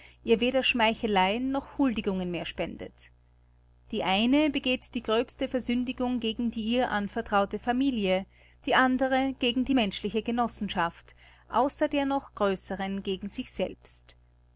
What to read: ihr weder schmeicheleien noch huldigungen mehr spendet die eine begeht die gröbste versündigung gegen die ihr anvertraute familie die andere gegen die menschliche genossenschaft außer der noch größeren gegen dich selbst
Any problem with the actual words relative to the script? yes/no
yes